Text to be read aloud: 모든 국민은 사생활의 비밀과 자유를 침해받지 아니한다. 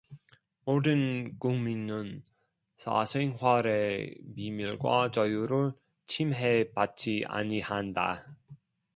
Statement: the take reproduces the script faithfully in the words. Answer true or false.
true